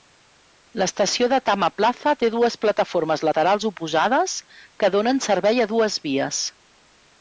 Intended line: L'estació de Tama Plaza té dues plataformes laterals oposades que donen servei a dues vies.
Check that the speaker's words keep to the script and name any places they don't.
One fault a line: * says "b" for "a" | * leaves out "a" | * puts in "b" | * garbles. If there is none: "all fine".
all fine